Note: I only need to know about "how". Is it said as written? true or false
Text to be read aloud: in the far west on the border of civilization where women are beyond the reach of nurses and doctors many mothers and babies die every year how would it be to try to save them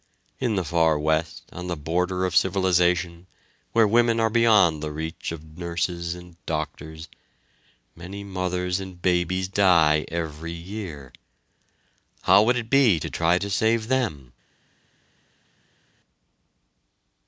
true